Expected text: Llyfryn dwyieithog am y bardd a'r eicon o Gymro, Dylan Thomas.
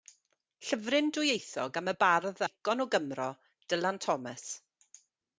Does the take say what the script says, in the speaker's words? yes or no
no